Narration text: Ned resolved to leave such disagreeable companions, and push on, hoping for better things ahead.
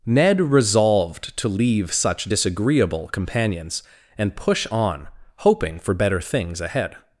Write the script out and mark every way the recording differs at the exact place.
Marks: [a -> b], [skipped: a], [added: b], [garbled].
Ned resolved to leave such disagreeable companions, and push on, hoping for better things ahead.